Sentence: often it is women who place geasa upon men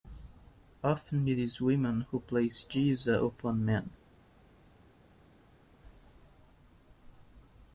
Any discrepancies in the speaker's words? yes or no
no